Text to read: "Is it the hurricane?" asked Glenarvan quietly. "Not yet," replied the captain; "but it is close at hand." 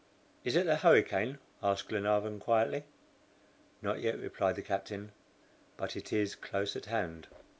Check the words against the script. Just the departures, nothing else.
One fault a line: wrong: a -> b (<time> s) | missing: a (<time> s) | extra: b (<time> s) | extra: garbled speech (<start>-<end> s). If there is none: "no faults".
no faults